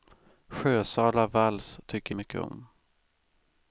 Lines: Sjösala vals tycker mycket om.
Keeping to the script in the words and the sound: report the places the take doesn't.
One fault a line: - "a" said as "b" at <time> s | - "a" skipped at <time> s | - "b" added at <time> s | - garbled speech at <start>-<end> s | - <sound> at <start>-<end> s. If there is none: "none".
none